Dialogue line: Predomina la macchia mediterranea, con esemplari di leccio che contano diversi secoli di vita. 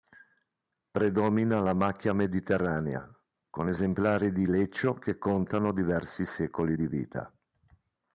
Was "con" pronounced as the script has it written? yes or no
yes